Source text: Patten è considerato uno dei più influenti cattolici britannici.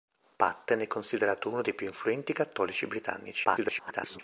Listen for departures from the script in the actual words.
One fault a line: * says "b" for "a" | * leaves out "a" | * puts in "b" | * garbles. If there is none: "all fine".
* garbles